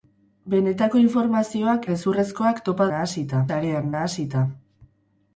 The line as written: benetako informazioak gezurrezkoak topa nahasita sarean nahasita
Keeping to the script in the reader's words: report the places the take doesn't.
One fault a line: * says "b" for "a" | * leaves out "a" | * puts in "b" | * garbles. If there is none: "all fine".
all fine